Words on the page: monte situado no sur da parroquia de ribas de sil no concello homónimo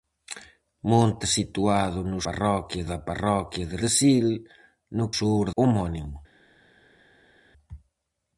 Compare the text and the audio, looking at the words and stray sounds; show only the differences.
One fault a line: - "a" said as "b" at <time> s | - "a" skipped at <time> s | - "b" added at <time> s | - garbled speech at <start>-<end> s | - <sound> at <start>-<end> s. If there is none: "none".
- "sur" said as "parroquia" at 2.3 s
- "ribas" skipped at 3.8 s
- "concello" said as "sur" at 5.2 s